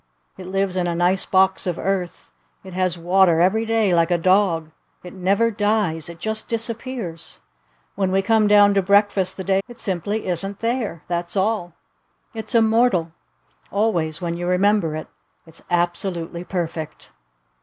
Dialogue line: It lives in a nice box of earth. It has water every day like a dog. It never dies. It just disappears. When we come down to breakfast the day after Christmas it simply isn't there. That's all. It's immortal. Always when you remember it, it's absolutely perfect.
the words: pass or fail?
fail